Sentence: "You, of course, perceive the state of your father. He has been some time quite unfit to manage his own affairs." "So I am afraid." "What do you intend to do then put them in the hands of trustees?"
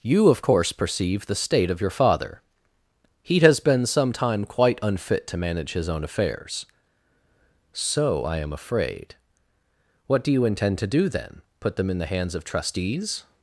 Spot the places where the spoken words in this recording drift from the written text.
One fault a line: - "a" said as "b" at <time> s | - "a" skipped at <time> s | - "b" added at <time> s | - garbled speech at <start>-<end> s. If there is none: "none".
none